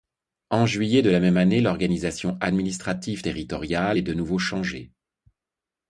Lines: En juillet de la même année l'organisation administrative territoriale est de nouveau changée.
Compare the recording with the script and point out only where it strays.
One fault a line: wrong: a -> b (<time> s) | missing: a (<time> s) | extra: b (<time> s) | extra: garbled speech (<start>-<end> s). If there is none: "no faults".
no faults